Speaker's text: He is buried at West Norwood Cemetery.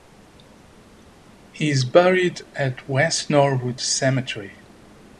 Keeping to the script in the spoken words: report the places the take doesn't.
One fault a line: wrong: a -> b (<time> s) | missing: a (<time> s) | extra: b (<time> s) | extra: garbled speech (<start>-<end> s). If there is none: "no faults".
no faults